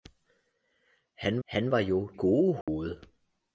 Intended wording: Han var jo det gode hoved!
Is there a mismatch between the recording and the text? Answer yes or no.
yes